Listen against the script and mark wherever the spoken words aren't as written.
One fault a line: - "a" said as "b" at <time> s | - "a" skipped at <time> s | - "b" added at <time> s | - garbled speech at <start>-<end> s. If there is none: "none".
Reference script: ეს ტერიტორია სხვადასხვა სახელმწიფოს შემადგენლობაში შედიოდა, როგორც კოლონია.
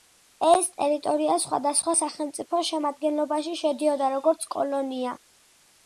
none